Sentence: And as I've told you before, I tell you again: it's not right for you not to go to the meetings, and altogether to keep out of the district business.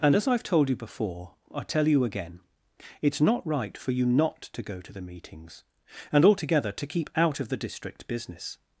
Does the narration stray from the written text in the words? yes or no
no